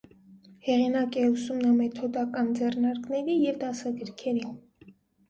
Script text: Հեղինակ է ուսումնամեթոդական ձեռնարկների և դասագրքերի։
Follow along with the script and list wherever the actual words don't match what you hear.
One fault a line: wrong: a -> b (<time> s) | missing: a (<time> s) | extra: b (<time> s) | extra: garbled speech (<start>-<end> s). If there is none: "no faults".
no faults